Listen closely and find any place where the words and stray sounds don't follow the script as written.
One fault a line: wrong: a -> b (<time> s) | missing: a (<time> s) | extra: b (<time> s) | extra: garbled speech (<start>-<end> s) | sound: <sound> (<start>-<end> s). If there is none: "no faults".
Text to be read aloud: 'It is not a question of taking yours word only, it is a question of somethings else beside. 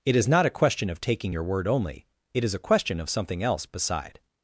wrong: yours -> your (1.3 s)
wrong: somethings -> something (3.1 s)